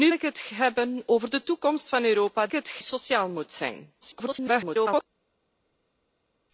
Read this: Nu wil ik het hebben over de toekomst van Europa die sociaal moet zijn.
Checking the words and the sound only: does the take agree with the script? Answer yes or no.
no